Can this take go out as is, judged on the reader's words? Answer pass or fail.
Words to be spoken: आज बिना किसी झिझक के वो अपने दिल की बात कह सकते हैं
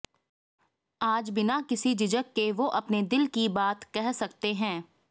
pass